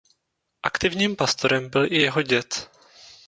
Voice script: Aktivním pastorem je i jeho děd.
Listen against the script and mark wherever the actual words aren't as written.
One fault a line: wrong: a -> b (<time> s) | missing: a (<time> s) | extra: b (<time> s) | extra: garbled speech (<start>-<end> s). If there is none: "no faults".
wrong: je -> byl (1.7 s)